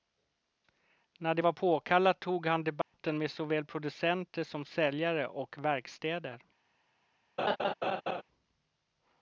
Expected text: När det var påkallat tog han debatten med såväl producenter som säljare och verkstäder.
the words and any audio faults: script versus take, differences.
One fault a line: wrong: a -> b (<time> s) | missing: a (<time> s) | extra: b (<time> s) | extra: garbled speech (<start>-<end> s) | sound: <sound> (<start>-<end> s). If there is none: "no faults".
sound: dropout (2.8-2.9 s)
sound: laugh (7.4-8.2 s)